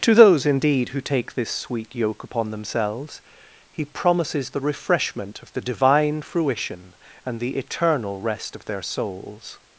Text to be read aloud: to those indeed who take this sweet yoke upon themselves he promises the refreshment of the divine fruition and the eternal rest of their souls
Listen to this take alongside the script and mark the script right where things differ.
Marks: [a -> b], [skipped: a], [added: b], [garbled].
to those indeed who take this sweet yoke upon themselves he promises the refreshment of the divine fruition and the eternal rest of their souls